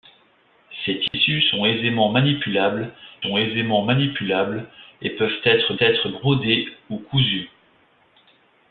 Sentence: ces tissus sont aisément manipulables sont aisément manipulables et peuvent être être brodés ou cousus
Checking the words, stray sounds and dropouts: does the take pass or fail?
fail